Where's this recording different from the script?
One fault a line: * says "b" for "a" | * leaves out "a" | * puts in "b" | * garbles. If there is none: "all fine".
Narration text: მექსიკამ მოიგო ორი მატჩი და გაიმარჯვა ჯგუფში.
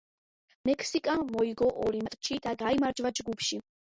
all fine